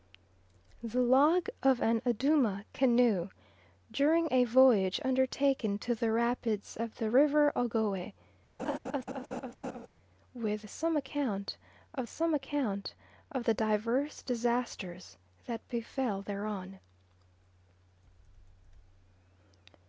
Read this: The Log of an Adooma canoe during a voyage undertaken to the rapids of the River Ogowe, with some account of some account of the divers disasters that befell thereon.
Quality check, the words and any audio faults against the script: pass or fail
fail